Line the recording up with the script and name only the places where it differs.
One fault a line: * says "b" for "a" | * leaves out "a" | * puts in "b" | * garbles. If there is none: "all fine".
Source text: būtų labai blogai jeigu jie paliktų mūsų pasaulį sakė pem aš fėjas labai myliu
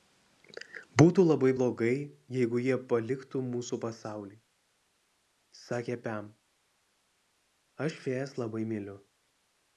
all fine